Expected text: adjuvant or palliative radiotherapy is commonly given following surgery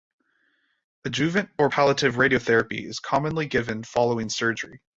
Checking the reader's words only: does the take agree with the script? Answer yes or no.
yes